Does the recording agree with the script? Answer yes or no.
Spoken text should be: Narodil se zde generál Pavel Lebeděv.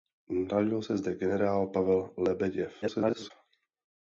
no